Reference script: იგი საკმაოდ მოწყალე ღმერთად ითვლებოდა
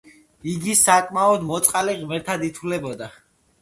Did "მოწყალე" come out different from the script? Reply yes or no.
no